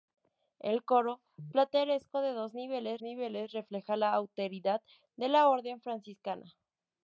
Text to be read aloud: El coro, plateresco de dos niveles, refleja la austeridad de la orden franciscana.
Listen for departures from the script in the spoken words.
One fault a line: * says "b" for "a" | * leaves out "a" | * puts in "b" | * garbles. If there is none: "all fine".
* puts in "niveles"